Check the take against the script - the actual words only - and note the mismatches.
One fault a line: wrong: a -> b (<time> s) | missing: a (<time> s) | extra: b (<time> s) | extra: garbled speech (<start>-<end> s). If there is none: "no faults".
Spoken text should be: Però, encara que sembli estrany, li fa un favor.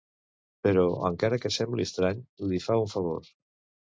no faults